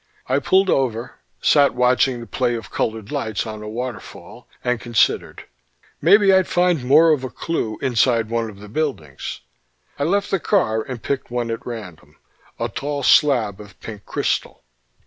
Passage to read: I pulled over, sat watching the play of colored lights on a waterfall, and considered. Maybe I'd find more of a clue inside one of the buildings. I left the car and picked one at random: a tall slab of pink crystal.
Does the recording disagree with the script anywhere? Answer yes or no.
no